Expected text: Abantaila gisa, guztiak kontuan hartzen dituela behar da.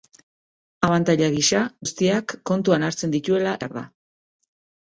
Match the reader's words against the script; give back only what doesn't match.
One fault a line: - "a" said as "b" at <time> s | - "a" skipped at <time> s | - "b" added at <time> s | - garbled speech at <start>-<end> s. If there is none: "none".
none